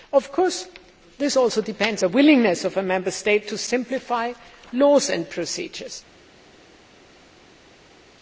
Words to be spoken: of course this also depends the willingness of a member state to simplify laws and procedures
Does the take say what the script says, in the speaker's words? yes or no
yes